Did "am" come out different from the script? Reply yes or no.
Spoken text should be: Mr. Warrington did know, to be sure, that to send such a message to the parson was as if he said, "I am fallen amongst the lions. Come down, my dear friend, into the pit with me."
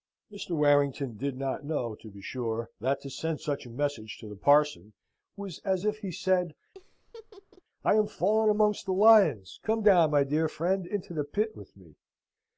no